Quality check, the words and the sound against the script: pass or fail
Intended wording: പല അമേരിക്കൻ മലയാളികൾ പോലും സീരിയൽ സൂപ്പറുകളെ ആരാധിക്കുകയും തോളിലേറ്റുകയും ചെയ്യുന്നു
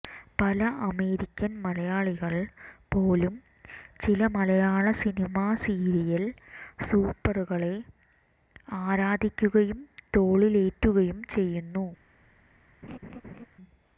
fail